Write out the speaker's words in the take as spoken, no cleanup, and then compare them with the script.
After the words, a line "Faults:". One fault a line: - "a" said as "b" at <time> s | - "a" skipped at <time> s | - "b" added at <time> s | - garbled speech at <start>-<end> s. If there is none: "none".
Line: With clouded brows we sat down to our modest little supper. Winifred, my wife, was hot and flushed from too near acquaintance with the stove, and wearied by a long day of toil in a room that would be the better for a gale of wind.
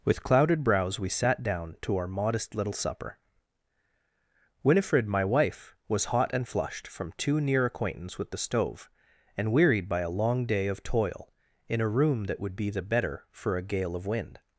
With clouded brows we sat down to our modest little supper. Winifred, my wife, was hot and flushed from too near acquaintance with the stove, and wearied by a long day of toil in a room that would be the better for a gale of wind.
Faults:
none